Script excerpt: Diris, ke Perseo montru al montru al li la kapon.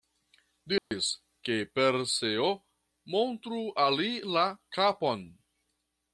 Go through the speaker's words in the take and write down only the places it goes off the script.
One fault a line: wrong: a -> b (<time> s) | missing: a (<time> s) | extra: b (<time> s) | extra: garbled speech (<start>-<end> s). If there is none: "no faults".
missing: montru al (4.0 s)